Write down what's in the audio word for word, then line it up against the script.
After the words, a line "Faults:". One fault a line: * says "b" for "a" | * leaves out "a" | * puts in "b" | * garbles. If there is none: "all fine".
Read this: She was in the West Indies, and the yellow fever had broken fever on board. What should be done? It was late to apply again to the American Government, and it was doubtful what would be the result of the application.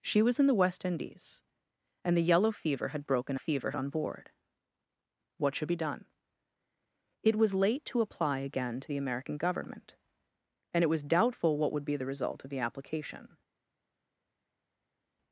She was in the West Indies, and the yellow fever had broken fever on board. What should be done? It was late to apply again to the American Government, and it was doubtful what would be the result of the application.
Faults:
all fine